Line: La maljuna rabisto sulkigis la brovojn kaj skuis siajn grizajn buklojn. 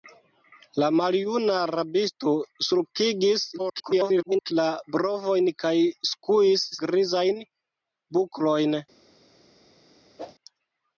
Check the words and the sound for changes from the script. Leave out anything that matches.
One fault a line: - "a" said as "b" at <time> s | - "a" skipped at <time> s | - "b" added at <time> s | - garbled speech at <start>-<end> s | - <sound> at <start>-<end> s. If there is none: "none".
- garbled speech at 3.6-4.5 s
- "siajn" skipped at 6.7 s
- whoosh at 10.2-10.3 s